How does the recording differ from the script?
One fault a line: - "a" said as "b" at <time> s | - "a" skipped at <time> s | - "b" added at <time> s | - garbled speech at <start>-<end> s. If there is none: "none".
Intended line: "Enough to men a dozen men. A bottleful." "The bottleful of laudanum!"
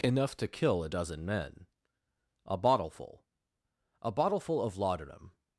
- "men" said as "kill" at 0.5 s
- "The" said as "A" at 4.0 s